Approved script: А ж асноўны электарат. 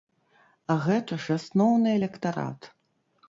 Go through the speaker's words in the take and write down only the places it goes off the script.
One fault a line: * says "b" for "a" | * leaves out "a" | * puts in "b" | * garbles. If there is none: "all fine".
* puts in "гэта"